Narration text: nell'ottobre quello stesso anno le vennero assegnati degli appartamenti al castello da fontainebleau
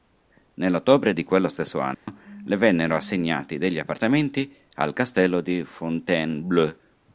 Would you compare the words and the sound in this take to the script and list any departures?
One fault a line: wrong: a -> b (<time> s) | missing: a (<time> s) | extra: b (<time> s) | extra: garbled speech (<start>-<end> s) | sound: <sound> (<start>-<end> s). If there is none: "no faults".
extra: di (1.1 s)
sound: dropout (1.9-2.1 s)
wrong: da -> di (5.4 s)